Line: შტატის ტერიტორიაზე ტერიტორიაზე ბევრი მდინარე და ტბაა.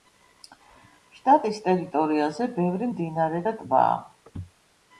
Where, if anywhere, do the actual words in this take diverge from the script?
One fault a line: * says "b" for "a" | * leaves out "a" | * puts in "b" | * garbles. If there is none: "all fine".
* leaves out "ტერიტორიაზე"